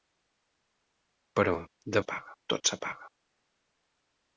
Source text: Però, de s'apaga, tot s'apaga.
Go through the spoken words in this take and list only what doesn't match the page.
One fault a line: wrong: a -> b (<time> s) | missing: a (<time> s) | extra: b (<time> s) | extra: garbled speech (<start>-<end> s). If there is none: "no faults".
no faults